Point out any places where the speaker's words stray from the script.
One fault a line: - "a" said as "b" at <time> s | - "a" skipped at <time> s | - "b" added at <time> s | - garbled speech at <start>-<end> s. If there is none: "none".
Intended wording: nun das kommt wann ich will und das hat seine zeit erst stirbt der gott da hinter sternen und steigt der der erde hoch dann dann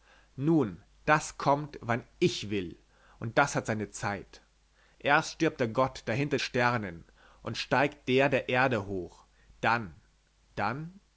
none